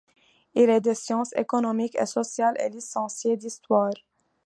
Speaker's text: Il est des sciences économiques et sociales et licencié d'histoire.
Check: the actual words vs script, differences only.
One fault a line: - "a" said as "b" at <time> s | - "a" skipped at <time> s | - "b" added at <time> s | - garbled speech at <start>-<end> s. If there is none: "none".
none